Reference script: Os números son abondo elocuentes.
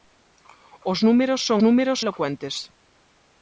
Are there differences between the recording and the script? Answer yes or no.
yes